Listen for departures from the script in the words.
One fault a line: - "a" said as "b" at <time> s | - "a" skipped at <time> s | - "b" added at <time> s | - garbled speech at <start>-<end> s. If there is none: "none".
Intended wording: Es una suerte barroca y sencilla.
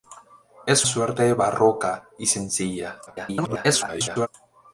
- "una" skipped at 0.9 s
- garbled speech at 3.1-4.3 s